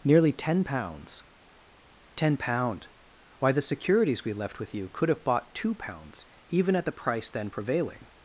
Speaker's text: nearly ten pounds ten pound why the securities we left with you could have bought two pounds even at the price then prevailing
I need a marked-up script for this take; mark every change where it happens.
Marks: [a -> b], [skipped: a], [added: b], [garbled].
nearly ten pounds ten pound why the securities we left with you could have bought two pounds even at the price then prevailing